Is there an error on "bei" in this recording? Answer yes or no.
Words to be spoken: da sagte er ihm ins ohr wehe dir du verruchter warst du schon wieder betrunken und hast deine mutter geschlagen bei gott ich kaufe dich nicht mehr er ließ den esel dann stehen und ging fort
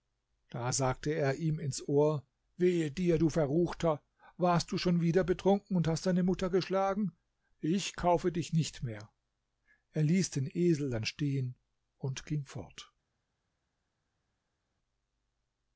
yes